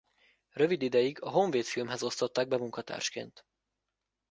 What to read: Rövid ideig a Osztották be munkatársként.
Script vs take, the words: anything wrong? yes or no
yes